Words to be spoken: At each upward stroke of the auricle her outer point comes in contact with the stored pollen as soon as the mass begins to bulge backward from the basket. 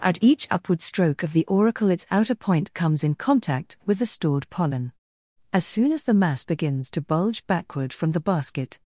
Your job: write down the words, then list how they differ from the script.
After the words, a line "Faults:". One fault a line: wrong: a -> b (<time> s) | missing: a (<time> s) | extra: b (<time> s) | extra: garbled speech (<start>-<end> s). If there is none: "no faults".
At each upward stroke of the auricle its outer point comes in contact with the stored pollen as soon as the mass begins to bulge backward from the basket.
Faults:
wrong: her -> its (1.9 s)